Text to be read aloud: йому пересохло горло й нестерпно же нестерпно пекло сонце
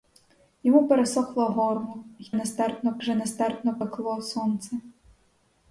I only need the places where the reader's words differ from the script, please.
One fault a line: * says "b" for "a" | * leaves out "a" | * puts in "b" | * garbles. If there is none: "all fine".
all fine